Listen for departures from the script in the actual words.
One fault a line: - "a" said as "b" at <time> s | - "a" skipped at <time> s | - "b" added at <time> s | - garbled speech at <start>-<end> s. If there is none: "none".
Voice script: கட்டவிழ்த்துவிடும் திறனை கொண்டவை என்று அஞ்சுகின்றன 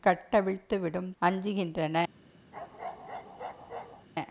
- "திறனை கொண்டவை என்று" skipped at 1.1 s